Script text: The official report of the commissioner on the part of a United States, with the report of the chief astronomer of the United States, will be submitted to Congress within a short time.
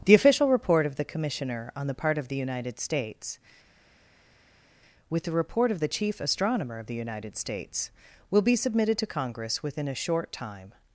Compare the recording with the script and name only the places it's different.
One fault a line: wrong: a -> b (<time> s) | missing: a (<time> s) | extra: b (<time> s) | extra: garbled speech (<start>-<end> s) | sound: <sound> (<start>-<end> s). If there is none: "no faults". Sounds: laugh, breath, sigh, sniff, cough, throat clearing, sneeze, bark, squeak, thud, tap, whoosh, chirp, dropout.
wrong: a -> the (2.3 s)